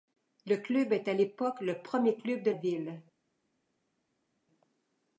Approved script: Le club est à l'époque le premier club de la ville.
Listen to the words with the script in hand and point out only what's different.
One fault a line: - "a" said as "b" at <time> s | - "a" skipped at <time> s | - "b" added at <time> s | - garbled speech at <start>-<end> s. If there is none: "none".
- "la" skipped at 2.5 s